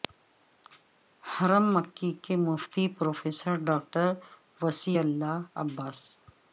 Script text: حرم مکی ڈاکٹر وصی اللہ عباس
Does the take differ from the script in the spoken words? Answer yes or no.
yes